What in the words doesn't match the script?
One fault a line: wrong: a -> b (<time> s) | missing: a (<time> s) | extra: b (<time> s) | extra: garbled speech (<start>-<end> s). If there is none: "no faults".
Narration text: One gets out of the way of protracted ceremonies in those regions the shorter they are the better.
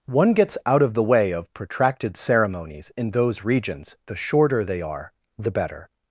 no faults